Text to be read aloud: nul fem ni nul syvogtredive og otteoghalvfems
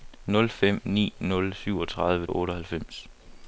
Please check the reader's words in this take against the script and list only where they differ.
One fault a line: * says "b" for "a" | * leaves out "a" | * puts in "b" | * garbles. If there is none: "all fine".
all fine